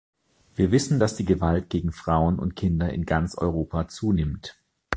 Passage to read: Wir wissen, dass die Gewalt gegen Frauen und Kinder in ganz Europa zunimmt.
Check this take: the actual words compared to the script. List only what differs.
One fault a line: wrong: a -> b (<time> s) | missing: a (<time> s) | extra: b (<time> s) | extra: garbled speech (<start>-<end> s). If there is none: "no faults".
no faults